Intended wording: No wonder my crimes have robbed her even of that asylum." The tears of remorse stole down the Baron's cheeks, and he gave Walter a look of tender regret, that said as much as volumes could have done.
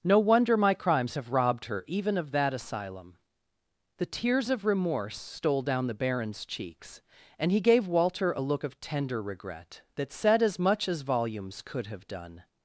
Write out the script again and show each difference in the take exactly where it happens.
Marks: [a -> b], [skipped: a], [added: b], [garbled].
No wonder my crimes have robbed her even of that asylum." The tears of remorse stole down the Baron's cheeks, and he gave Walter a look of tender regret, that said as much as volumes could have done.